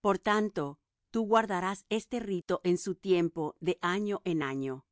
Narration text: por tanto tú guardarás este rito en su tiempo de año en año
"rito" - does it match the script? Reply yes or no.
yes